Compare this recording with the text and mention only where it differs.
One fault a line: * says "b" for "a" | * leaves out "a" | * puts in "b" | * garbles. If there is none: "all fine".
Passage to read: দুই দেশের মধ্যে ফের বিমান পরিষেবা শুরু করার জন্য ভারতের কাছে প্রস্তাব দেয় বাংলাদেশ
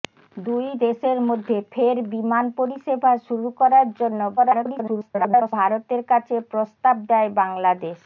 * garbles